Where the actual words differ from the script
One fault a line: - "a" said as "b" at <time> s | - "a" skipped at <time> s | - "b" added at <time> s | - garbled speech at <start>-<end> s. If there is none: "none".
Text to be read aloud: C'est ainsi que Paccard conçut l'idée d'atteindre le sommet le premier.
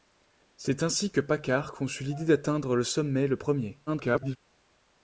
- garbled speech at 3.9-4.4 s